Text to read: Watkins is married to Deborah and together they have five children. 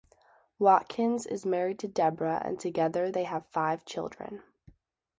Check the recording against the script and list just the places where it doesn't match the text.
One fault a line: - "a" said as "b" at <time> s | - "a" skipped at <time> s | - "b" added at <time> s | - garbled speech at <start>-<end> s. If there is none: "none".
none